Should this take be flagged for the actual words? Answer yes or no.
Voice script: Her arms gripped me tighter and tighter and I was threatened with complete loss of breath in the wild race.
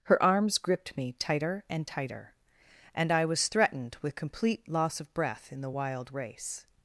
no